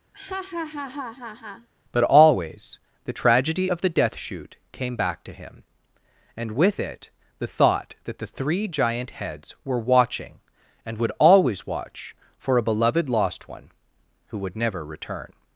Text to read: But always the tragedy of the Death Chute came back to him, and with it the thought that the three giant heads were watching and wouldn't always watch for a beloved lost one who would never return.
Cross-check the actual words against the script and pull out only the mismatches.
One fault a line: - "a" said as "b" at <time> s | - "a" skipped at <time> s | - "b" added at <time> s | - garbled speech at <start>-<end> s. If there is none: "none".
- "wouldn't" said as "would" at 11.0 s